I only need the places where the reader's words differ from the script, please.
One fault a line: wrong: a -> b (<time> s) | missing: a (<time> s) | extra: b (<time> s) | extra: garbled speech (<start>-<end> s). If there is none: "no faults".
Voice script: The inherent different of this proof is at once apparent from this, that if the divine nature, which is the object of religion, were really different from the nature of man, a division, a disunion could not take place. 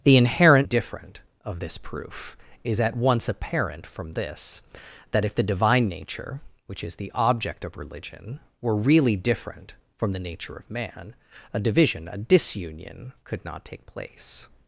no faults